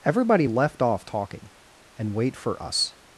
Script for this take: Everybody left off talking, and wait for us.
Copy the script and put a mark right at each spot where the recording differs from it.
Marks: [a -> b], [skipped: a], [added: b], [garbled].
Everybody left off talking, and wait for us.